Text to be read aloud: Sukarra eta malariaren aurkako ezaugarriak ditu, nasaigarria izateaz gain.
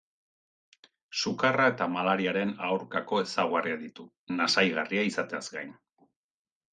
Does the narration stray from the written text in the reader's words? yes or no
no